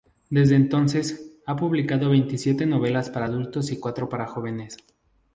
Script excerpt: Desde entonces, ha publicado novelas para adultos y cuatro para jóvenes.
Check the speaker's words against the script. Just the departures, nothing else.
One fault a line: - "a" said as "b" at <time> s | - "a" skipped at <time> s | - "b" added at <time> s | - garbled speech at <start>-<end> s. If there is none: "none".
- "veintisiete" added at 2.1 s